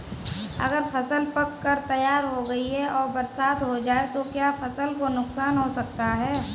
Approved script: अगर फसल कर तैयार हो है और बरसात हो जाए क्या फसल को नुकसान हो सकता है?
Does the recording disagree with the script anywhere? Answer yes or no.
yes